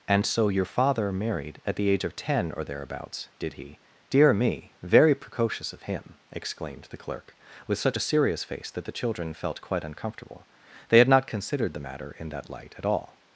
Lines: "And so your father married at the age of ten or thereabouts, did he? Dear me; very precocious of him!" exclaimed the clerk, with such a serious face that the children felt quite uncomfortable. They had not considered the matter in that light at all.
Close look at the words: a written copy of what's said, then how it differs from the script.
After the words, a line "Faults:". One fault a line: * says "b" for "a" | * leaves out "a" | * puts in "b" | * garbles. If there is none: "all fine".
"And so your father married at the age of ten or thereabouts, did he? Dear me; very precocious of him!" exclaimed the clerk, with such a serious face that the children felt quite uncomfortable. They had not considered the matter in that light at all.
Faults:
all fine